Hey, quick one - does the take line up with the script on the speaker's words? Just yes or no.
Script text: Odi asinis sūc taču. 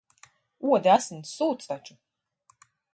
yes